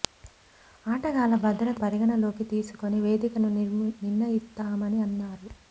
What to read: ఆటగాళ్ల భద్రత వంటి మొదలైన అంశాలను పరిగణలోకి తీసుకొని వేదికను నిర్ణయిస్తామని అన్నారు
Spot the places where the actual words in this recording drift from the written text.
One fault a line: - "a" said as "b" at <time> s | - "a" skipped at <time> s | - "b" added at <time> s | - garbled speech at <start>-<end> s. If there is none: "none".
- "వంటి మొదలైన అంశాలను" skipped at 1.8 s